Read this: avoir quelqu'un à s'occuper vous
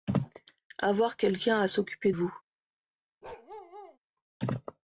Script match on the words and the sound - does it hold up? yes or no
no